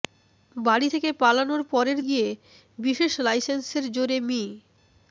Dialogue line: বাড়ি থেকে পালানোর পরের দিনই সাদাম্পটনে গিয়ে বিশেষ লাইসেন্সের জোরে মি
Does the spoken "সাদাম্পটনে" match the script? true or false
false